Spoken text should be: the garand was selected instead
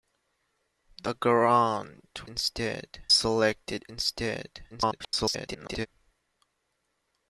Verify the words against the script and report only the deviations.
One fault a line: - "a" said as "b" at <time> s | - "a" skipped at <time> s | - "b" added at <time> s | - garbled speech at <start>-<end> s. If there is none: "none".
- "was" said as "instead" at 2.3 s
- garbled speech at 4.7-5.9 s